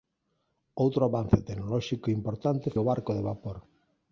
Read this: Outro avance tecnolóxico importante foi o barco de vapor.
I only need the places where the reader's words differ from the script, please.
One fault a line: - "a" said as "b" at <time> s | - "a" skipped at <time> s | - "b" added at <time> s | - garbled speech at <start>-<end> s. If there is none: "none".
- "foi" skipped at 2.7 s